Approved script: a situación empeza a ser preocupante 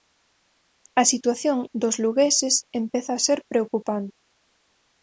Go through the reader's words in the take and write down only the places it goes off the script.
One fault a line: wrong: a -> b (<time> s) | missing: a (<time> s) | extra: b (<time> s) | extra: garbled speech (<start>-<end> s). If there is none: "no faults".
extra: dos lugueses (1.8 s)